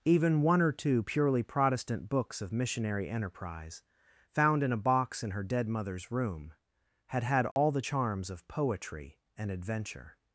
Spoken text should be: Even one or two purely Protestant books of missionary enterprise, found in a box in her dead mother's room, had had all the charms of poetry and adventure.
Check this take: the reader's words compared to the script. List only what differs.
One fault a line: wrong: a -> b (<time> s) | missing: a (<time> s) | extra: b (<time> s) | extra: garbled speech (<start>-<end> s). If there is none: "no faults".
no faults